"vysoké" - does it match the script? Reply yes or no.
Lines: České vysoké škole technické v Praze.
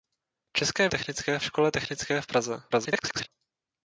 no